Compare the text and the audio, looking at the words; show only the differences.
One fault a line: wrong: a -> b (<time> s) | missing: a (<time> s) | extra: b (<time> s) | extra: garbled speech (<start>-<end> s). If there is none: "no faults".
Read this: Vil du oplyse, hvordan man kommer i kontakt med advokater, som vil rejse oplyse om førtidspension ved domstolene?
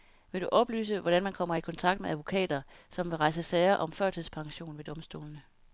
wrong: oplyse -> sager (3.4 s)